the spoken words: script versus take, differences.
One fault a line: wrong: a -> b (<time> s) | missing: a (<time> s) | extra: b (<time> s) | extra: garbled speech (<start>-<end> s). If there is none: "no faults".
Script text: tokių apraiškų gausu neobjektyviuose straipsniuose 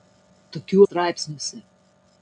missing: apraiškų gausu neobjektyviuose (0.8 s)